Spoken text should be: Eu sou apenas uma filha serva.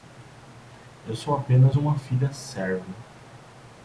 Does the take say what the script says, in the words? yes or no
yes